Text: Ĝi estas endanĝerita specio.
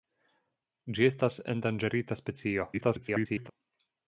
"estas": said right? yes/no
yes